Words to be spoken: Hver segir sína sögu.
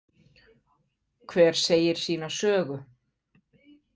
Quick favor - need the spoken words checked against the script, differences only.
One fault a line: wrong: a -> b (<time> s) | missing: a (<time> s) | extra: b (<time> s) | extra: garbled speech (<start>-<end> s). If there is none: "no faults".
no faults